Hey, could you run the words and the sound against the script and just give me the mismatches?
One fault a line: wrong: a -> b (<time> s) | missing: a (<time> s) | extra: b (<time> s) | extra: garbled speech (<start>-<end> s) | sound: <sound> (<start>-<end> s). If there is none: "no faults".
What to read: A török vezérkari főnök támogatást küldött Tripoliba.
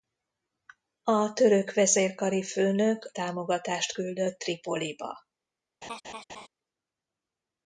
sound: laugh (5.8-6.5 s)